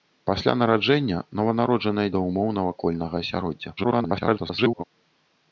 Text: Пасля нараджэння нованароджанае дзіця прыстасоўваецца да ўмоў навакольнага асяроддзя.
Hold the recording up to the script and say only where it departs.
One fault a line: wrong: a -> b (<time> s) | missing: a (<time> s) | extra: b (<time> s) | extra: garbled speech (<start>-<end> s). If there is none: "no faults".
missing: дзіця прыстасоўваецца (2.1 s)
extra: garbled speech (3.8-4.8 s)